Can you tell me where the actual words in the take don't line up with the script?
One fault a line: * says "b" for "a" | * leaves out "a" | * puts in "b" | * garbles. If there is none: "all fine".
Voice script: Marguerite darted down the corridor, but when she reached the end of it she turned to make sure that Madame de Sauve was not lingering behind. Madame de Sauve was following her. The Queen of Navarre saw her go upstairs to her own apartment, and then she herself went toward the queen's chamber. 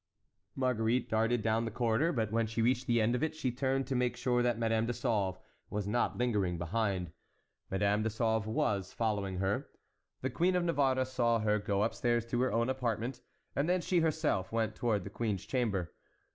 all fine